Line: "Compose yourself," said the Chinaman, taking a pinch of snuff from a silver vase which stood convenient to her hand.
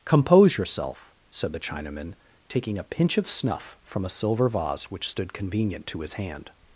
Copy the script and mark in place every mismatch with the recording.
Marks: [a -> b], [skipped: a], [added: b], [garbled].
"Compose yourself," said the Chinaman, taking a pinch of snuff from a silver vase which stood convenient to [her -> his] hand.